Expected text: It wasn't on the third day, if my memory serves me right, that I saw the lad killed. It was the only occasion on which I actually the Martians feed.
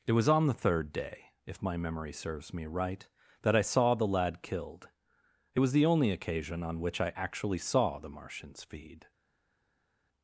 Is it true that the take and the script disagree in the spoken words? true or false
true